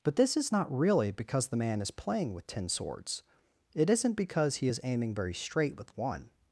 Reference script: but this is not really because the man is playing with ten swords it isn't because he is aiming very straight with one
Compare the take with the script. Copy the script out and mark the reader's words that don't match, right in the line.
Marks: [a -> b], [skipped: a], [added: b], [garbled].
but this is not really because the man is playing with ten swords it isn't because he is aiming very straight with one